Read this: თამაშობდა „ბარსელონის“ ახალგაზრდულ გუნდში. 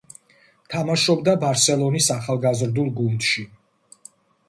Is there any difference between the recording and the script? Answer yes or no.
no